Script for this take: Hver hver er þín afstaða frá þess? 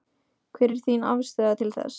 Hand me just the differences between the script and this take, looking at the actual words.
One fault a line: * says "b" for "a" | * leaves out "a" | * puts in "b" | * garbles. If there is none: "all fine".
* leaves out "hver"
* says "til" for "frá"